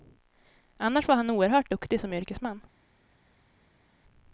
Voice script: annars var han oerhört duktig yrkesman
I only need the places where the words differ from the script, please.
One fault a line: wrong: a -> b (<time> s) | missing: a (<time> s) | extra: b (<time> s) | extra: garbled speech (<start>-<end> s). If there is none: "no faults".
extra: som (2.0 s)